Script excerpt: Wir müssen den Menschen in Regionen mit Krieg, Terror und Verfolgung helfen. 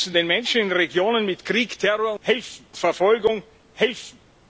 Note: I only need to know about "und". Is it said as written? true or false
false